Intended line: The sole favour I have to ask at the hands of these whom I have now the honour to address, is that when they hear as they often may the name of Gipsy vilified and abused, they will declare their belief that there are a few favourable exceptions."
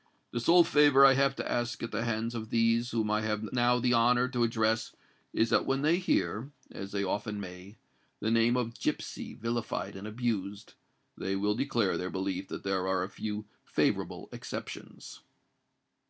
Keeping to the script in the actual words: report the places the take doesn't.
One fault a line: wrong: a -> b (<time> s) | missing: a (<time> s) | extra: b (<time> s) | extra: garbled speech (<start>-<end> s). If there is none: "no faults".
no faults